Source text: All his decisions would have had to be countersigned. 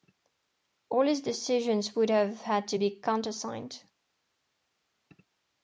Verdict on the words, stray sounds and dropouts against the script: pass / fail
pass